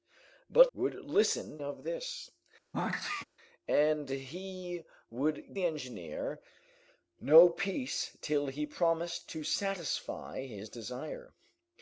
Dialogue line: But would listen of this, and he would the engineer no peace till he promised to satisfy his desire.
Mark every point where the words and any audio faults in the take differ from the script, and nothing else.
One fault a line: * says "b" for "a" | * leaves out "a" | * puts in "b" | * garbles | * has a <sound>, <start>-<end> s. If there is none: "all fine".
* has a sneeze, 2.7-3.2 s